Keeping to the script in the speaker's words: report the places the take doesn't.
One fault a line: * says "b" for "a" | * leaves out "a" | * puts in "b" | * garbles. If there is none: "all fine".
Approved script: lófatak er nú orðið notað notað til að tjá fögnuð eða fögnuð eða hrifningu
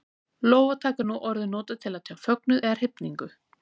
* leaves out "notað"
* leaves out "fögnuð eða"